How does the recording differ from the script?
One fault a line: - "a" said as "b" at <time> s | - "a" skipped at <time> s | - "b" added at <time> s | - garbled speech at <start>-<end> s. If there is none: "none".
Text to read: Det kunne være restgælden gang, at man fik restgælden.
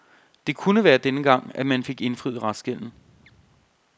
- "restgælden" said as "denne" at 1.0 s
- "indfriet" added at 2.0 s